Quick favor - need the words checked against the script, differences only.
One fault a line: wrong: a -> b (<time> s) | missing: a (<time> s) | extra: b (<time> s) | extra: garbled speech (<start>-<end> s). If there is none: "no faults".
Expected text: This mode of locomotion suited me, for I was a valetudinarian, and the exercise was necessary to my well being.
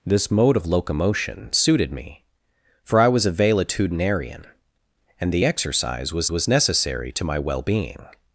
extra: was (6.3 s)